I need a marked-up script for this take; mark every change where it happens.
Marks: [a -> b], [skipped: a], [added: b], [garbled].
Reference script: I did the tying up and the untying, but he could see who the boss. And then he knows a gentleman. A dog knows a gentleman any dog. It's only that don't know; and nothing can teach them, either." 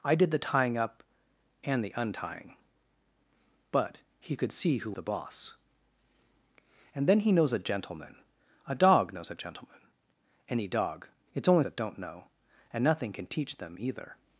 I did the tying up and the untying, but he could see who the boss. And then he knows a gentleman. A dog knows a gentleman any dog. It's only that don't know; and nothing can teach them, either."